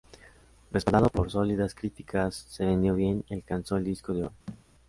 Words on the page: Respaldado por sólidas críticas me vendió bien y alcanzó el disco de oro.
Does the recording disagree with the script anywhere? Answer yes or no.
yes